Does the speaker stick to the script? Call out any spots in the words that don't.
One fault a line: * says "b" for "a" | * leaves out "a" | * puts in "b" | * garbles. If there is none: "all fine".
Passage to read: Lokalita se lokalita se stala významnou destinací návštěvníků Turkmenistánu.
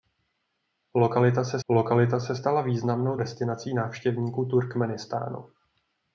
all fine